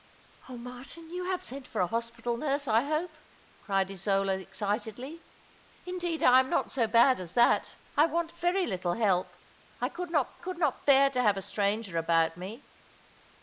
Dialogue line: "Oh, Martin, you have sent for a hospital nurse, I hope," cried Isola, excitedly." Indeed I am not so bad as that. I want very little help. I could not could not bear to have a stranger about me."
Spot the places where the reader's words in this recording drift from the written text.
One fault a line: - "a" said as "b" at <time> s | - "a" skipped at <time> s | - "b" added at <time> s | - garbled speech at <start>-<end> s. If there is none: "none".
none